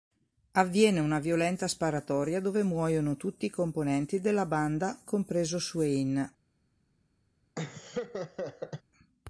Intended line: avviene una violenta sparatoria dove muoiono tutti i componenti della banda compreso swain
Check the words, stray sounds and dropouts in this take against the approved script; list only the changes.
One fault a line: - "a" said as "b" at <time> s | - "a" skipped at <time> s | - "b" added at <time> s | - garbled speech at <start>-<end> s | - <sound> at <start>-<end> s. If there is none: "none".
- laugh at 7.5-8.8 s